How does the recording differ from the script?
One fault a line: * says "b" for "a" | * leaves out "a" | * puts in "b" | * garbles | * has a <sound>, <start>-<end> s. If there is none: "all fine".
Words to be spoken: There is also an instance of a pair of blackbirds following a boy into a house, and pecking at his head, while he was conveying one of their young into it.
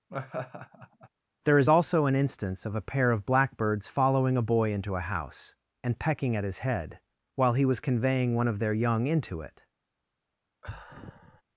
* has a laugh, 0.1-1.1 s
* has a sigh, 10.6-11.4 s